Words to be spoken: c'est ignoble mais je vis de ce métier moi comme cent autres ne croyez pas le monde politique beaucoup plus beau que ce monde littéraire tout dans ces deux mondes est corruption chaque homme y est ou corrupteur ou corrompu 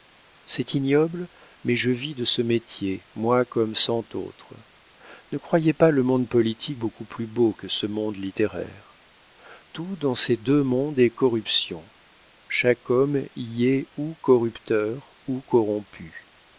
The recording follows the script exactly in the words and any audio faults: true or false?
true